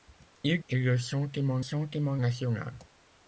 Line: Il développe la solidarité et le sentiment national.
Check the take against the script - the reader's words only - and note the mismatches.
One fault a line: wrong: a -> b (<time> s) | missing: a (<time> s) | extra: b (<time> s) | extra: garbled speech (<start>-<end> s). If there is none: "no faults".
missing: développe la solidarité (0.6 s)
extra: sentiment (1.6 s)